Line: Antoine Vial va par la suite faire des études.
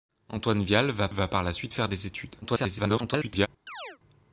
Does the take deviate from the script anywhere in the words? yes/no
yes